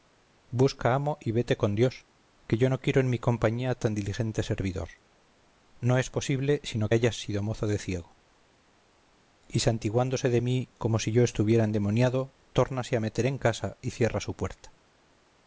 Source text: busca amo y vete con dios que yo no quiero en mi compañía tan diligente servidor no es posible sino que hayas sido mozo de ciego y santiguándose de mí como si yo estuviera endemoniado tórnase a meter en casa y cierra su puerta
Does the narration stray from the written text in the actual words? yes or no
yes